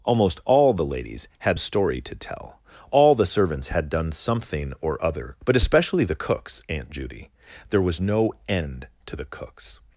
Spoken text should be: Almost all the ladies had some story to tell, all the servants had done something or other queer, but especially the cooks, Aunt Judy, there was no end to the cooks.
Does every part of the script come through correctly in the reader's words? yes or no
no